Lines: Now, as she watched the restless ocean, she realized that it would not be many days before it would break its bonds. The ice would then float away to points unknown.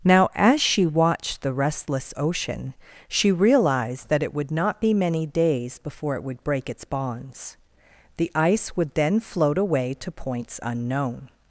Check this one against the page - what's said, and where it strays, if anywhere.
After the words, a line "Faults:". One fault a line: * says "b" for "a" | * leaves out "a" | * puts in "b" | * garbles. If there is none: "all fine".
Now, as she watched the restless ocean, she realized that it would not be many days before it would break its bonds. The ice would then float away to points unknown.
Faults:
all fine